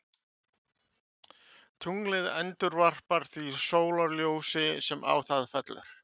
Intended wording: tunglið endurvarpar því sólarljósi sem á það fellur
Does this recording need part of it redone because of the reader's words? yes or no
no